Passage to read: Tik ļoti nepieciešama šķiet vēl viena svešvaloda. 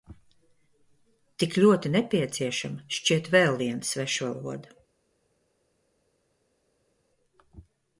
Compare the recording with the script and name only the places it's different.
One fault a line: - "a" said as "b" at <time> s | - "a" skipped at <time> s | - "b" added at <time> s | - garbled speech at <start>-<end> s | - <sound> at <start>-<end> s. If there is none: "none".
none